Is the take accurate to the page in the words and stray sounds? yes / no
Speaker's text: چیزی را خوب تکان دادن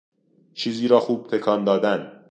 yes